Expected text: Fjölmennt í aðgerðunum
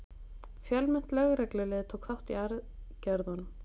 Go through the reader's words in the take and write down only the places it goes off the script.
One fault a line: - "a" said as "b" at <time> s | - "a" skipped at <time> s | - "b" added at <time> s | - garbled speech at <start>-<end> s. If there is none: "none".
- "lögreglulið tók þátt" added at 1.2 s